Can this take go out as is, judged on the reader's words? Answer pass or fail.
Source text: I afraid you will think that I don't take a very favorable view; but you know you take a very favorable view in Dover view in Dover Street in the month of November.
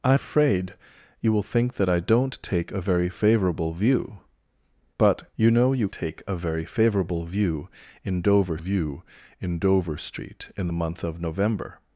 pass